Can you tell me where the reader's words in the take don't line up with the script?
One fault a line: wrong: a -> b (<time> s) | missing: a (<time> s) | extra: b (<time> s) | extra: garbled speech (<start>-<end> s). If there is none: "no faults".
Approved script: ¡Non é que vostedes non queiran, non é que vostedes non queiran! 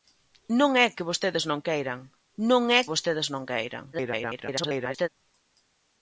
missing: que (2.8 s)
extra: garbled speech (3.9-5.1 s)